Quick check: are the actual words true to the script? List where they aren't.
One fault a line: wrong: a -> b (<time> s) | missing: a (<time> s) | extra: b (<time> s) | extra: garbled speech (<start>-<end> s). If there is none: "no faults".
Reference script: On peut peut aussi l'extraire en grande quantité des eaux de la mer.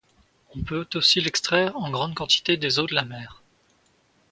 missing: peut (0.9 s)